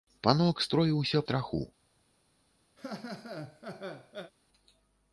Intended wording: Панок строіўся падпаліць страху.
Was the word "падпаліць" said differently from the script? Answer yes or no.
yes